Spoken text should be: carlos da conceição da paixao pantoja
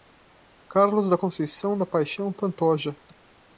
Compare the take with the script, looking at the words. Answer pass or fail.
pass